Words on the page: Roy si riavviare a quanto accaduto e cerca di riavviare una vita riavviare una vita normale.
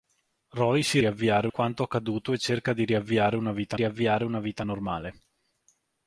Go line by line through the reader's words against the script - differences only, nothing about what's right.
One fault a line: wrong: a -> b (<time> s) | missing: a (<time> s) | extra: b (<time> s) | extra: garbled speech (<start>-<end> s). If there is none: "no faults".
no faults